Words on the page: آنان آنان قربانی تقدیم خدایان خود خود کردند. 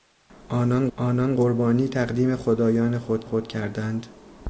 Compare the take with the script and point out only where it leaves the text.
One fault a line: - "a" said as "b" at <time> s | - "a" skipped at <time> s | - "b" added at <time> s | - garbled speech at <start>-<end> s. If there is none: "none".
none